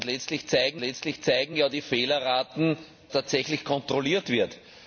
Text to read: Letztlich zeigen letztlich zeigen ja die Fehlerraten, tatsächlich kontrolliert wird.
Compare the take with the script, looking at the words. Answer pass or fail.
pass